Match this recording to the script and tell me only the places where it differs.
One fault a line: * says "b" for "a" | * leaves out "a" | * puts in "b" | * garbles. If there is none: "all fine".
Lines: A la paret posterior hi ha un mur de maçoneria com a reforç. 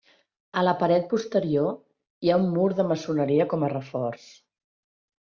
all fine